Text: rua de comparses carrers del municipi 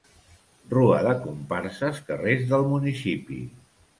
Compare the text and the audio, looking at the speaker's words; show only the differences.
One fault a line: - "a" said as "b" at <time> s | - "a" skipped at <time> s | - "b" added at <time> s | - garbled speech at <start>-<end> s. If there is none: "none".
none